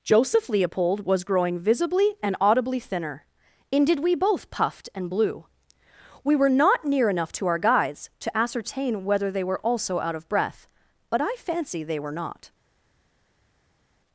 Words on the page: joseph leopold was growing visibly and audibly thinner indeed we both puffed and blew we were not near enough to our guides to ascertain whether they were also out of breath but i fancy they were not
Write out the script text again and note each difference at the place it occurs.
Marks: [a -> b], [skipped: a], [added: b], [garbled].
joseph leopold was growing visibly and audibly thinner indeed we both puffed and blew we were not near enough to our guides to ascertain whether they were also out of breath but i fancy they were not